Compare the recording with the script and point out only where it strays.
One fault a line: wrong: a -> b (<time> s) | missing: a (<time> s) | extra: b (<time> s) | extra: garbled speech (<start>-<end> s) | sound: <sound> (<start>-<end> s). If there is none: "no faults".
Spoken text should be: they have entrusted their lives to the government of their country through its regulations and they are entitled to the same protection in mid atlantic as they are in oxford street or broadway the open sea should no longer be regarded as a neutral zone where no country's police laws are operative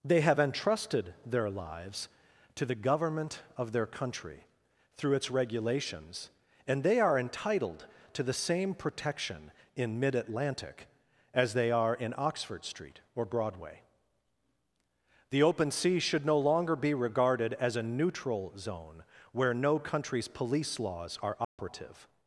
sound: dropout (21.4-21.6 s)